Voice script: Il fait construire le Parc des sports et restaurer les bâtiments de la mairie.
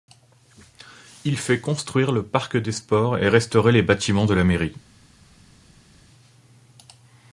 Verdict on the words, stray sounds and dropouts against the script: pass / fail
pass